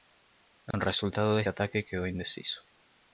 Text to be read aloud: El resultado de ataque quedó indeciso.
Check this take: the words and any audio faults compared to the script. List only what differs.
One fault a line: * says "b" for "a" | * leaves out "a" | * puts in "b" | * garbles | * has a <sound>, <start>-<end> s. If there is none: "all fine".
* has a dropout, 0.7-0.7 s